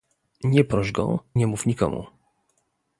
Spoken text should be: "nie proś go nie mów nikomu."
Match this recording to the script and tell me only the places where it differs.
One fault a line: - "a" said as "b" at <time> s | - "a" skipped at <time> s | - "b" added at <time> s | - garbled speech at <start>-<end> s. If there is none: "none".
none